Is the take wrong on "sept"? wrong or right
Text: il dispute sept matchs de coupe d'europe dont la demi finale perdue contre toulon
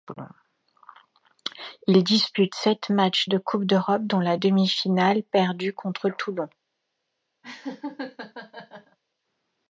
right